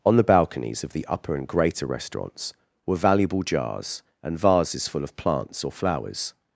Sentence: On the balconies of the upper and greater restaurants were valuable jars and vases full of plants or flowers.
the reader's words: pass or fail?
pass